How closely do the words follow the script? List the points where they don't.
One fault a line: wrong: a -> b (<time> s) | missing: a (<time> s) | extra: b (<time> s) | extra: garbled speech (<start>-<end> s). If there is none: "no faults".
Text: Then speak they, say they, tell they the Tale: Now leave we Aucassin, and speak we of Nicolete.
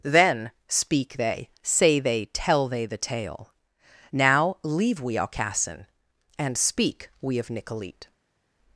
no faults